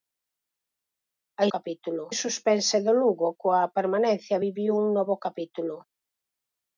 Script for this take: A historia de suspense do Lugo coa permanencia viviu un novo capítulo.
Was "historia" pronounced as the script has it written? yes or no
no